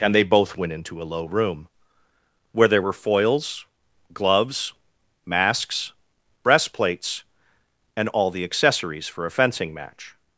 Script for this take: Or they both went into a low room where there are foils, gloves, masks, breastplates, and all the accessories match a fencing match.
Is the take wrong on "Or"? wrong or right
wrong